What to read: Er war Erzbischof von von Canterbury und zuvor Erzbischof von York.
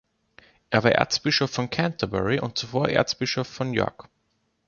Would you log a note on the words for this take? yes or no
yes